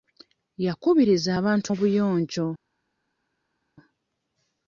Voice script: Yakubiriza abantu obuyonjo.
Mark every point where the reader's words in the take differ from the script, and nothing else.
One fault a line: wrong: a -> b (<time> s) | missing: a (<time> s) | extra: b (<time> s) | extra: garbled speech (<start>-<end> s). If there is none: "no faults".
no faults